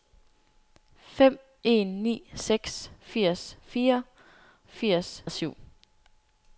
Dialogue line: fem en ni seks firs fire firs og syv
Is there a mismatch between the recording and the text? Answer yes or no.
no